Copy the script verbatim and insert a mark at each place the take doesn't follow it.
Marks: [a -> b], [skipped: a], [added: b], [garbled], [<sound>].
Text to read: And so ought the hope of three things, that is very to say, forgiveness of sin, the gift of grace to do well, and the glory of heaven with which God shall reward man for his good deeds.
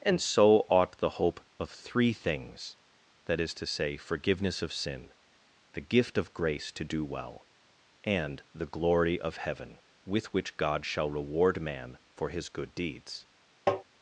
And so ought the hope of three things, that is [skipped: very] to say, forgiveness of sin, the gift of grace to do well, and the glory of heaven with which God shall reward man for his good deeds. [tap]